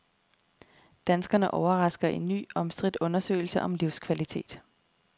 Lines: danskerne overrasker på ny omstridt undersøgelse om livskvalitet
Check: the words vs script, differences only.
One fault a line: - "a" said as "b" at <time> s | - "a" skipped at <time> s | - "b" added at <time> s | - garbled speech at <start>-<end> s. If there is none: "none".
- "på" said as "i" at 2.1 s